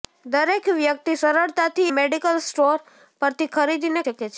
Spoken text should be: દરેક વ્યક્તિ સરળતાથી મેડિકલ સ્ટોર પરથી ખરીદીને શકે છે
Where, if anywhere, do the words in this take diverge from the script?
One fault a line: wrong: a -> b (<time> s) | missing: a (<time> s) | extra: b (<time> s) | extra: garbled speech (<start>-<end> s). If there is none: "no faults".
no faults